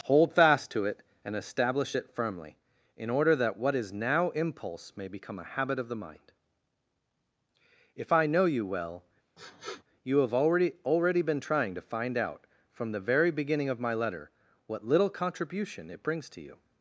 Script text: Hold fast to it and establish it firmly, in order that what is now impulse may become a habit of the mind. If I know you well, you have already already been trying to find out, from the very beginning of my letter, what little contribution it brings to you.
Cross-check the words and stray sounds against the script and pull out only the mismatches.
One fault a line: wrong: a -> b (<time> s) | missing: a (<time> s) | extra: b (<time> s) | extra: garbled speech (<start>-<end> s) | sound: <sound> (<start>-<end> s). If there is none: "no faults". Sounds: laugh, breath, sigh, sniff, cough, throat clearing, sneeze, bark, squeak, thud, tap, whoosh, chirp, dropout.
sound: sniff (9.4-9.8 s)